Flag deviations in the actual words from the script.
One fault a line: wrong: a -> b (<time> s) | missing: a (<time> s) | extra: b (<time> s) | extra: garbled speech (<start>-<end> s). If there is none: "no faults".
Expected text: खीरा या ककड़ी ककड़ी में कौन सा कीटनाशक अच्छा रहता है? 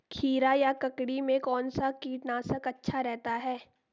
missing: ककड़ी (1.2 s)